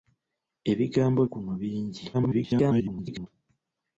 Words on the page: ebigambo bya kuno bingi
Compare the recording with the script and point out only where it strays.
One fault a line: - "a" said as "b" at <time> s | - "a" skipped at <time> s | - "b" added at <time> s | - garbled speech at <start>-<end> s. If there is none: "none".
- "bya" skipped at 1.2 s
- garbled speech at 2.1-3.3 s